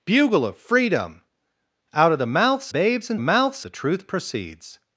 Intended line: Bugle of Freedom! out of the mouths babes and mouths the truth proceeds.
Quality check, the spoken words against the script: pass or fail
pass